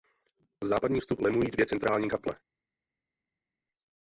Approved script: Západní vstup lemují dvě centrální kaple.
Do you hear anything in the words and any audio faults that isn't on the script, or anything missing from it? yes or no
no